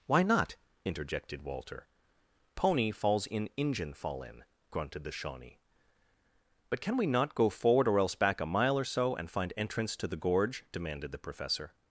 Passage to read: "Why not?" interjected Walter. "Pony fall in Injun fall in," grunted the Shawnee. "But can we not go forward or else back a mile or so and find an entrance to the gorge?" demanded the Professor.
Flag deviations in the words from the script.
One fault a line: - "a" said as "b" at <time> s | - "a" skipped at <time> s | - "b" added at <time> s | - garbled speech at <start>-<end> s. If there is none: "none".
- "fall" said as "falls" at 2.9 s
- "an" skipped at 9.5 s